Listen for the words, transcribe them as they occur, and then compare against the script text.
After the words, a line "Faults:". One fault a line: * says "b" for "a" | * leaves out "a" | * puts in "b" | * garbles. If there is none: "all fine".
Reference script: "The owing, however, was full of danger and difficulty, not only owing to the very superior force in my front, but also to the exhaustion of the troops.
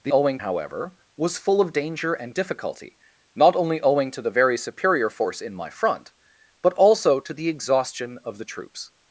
"The owing, however, was full of danger and difficulty, not only owing to the very superior force in my front, but also to the exhaustion of the troops.
Faults:
all fine